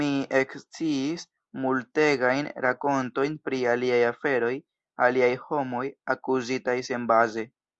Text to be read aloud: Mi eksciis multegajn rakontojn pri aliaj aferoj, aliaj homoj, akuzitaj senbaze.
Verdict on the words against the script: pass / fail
pass